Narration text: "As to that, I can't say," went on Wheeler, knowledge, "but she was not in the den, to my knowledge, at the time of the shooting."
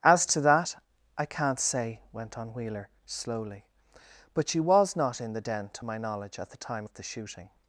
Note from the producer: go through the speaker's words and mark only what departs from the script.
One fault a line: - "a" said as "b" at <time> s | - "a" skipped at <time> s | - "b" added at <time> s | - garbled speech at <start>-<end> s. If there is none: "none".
- "knowledge" said as "slowly" at 3.0 s